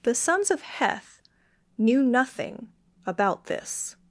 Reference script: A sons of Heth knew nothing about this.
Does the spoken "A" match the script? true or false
false